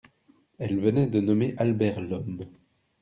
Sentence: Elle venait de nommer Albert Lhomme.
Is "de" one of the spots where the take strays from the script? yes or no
no